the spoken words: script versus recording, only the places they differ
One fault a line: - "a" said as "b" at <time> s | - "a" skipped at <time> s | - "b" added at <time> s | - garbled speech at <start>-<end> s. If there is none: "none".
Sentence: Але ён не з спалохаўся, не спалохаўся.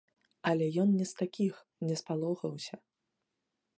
- "спалохаўся" said as "такіх" at 1.2 s